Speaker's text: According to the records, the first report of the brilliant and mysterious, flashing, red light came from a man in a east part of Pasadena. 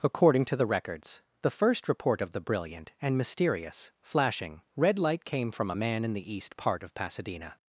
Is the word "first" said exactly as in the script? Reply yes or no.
yes